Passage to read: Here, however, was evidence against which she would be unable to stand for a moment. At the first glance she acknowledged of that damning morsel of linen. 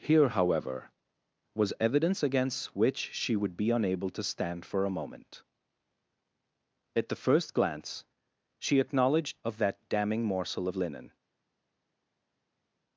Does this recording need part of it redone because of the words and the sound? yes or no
no